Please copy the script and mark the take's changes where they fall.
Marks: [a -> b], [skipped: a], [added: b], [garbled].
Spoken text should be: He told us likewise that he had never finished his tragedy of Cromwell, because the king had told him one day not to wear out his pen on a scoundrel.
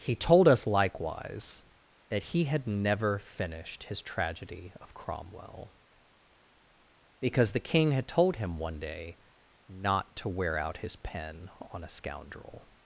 He told us likewise that he had never finished his tragedy of Cromwell, because the king had told him one day not to wear out his pen on a scoundrel.